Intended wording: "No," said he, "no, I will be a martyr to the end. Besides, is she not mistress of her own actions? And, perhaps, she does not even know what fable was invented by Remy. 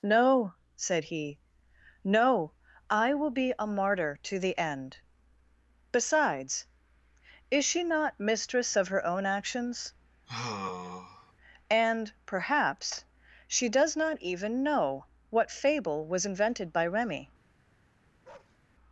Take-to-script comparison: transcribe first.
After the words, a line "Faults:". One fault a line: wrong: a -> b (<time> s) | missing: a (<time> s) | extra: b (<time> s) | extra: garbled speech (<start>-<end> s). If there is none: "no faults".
"No," said he, "no, I will be a martyr to the end. Besides, is she not mistress of her own actions? And, perhaps, she does not even know what fable was invented by Remy.
Faults:
no faults